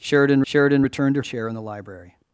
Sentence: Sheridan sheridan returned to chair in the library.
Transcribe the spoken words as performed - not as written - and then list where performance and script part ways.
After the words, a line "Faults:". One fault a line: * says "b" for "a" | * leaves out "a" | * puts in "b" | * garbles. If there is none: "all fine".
Sheridan sheridan returned to chair in the library.
Faults:
all fine